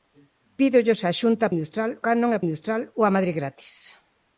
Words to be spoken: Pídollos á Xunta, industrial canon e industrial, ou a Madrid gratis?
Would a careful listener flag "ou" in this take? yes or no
no